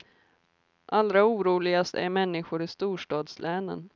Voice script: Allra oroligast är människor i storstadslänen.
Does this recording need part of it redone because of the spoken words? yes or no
no